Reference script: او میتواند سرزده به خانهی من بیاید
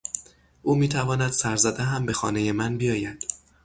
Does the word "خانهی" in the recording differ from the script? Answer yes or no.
no